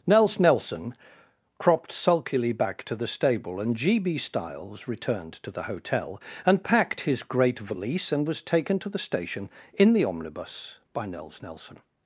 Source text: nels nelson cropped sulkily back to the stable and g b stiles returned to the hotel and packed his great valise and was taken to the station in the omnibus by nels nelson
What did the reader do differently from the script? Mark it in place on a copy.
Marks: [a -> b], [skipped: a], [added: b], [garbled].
nels nelson cropped sulkily back to the stable and g b stiles returned to the hotel and packed his great valise and was taken to the station in the omnibus by nels nelson